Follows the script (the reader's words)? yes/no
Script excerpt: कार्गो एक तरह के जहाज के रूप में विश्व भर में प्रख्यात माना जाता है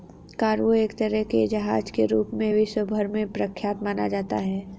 yes